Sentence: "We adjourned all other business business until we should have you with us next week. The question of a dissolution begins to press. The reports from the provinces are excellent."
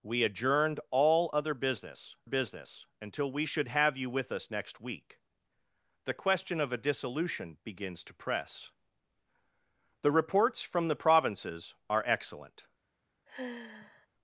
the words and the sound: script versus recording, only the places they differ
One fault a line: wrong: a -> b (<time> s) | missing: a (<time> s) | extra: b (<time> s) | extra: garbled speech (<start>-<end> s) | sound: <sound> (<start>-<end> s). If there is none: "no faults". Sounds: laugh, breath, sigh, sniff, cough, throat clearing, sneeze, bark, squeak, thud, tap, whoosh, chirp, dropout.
sound: sigh (13.3-14.1 s)